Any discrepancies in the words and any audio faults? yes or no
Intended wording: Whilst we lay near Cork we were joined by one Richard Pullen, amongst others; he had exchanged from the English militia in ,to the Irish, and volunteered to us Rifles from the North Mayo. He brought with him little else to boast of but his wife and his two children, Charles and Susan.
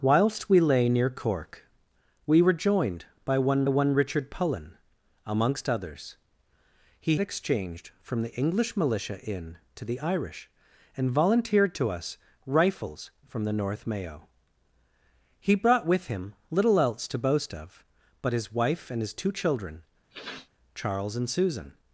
yes